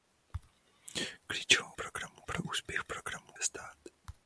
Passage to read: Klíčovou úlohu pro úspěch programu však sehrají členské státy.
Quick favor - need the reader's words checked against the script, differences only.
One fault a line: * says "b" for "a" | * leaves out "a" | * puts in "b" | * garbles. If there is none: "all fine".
* says "programu" for "úlohu"
* leaves out "však sehrají členské"